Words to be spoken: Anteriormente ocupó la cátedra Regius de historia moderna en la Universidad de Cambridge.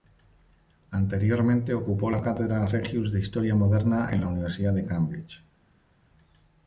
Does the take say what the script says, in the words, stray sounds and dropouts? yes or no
yes